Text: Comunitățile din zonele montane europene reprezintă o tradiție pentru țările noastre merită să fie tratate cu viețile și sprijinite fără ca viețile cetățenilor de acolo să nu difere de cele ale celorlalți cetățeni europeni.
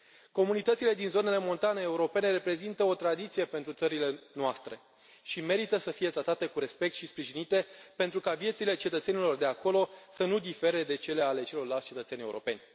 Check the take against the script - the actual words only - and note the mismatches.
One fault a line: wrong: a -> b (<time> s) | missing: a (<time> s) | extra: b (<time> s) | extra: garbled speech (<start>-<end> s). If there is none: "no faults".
extra: și (5.2 s)
wrong: viețile -> respect (6.6 s)
wrong: fără -> pentru (8.0 s)